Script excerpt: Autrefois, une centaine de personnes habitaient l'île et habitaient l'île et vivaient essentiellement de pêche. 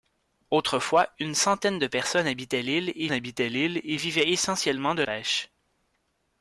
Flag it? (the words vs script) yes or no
no